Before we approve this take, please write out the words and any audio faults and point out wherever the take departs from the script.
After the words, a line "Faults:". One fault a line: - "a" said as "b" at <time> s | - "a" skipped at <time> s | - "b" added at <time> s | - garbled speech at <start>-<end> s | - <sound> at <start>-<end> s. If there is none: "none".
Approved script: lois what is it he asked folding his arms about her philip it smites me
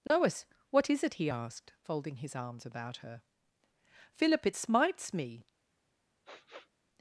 lois what is it he asked folding his arms about her philip it smites me
Faults:
- dropout at 0.1-0.1 s
- sniff at 6.2-6.7 s